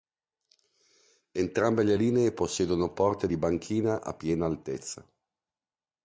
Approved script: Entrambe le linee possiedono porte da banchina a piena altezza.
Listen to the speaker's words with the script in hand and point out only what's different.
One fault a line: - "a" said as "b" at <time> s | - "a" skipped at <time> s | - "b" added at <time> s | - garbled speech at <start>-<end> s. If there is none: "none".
- "da" said as "di" at 3.3 s